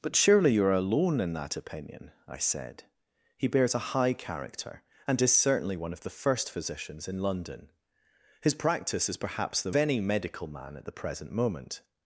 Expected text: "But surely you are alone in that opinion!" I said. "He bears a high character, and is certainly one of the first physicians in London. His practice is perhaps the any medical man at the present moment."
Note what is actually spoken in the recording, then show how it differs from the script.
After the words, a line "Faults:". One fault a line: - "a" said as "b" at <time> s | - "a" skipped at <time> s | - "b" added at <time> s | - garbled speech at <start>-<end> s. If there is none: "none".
"But surely you are alone in that opinion!" I said. "He bears a high character, and is certainly one of the first physicians in London. His practice is perhaps the any medical man at the present moment."
Faults:
none